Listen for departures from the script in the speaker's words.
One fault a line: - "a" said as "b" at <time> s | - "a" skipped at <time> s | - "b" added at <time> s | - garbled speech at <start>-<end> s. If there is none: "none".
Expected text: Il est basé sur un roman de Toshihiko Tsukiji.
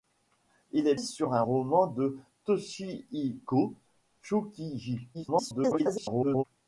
- "basé" skipped at 0.9 s
- garbled speech at 5.1-6.4 s